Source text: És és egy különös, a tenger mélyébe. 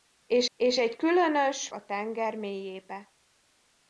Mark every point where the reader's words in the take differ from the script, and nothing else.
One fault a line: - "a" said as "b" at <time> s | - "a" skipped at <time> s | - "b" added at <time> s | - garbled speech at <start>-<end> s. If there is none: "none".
none